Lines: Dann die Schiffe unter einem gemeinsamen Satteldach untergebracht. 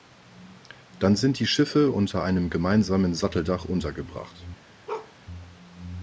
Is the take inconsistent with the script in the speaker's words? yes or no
yes